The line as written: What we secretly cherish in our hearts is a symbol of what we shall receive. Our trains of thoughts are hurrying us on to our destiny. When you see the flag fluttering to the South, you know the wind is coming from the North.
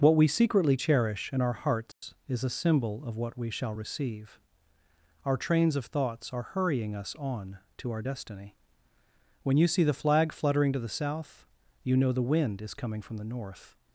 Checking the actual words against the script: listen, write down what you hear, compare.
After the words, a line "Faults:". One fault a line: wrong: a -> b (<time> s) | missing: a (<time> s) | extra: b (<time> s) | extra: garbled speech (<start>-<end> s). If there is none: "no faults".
What we secretly cherish in our hearts is a symbol of what we shall receive. Our trains of thoughts are hurrying us on to our destiny. When you see the flag fluttering to the South, you know the wind is coming from the North.
Faults:
no faults